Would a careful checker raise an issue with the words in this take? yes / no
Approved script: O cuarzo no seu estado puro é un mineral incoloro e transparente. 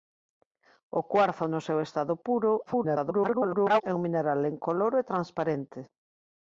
yes